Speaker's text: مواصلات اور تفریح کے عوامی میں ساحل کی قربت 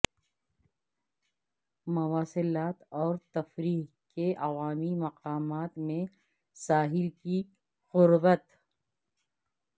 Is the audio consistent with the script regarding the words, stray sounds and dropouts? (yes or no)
no